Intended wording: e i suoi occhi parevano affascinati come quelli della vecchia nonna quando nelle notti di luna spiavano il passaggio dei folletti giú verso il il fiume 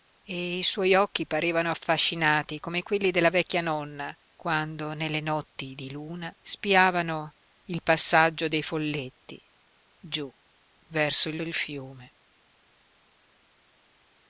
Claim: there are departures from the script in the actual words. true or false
false